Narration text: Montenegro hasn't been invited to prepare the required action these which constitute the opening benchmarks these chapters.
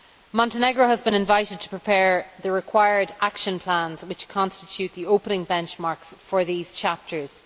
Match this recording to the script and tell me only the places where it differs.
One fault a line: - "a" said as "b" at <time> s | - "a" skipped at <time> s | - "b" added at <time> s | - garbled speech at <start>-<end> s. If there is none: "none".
- "hasn't" said as "has" at 0.9 s
- "these" said as "plans" at 3.6 s
- "for" added at 6.2 s